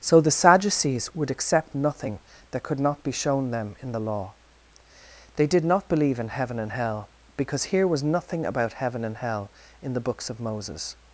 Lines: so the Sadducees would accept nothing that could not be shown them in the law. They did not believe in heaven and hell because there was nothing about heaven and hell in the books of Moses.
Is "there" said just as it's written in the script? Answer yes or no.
no